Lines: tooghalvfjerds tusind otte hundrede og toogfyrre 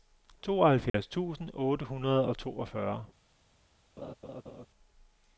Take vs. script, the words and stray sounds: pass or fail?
fail